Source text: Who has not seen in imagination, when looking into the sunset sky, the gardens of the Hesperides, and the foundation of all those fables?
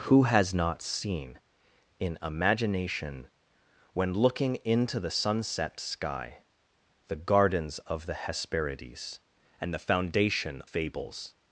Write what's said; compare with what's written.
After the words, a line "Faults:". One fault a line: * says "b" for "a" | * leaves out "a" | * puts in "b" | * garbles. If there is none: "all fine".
Who has not seen in imagination, when looking into the sunset sky, the gardens of the Hesperides, and the foundation fables?
Faults:
* leaves out "of all those"